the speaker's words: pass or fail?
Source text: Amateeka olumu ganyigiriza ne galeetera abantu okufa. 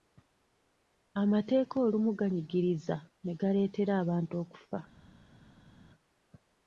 pass